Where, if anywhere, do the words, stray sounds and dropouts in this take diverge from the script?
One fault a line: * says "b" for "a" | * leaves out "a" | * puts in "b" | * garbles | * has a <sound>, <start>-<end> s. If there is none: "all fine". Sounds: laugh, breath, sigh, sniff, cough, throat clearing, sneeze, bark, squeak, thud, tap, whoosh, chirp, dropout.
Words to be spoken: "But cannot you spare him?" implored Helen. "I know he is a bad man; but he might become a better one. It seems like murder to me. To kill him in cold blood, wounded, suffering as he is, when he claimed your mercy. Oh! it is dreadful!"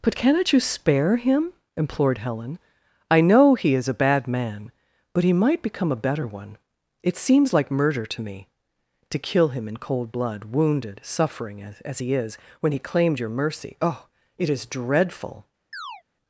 * puts in "as"
* has a chirp, 15.7-16.0 s